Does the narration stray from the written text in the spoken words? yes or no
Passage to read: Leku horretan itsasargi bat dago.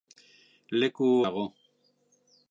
yes